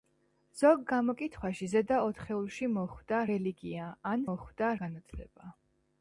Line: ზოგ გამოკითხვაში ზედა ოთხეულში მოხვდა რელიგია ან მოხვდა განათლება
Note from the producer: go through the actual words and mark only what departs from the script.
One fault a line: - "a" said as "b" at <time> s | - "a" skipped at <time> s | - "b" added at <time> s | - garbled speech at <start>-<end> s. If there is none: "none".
none